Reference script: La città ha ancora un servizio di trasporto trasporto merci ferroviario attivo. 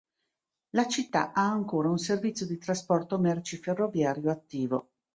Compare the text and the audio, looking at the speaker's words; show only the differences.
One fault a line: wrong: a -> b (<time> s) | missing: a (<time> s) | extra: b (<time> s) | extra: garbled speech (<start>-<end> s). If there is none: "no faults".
missing: trasporto (3.2 s)